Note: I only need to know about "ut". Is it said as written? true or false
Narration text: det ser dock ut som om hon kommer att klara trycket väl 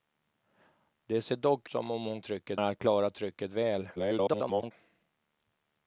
false